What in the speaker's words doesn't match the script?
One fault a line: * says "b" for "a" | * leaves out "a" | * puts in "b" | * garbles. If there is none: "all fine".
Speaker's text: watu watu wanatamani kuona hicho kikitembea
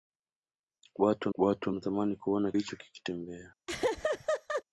all fine